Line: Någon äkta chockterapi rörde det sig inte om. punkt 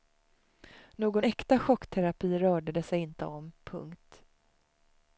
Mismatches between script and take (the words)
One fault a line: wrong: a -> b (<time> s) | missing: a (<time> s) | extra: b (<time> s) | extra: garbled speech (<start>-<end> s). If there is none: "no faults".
no faults